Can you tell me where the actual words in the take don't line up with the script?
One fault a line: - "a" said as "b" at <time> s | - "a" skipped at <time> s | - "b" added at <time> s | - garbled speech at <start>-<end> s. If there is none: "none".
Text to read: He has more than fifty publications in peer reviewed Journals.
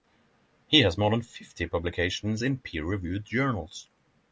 none